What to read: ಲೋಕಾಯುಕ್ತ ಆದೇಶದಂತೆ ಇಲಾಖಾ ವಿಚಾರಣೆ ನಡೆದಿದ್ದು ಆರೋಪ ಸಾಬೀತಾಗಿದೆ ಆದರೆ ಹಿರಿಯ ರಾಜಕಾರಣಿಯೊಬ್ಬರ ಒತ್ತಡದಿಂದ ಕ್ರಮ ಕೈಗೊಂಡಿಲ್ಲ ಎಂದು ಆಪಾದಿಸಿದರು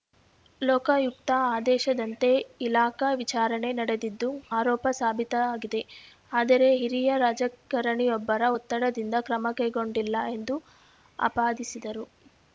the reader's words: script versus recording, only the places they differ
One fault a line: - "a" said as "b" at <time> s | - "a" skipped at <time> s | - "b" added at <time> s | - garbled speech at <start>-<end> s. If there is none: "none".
none